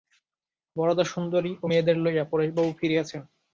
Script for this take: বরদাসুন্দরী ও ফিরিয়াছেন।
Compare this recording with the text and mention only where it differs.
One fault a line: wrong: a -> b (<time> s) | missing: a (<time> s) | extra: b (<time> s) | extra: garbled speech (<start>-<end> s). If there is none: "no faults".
extra: মেয়েদের লইয়া পরেশবাবু (1.7 s)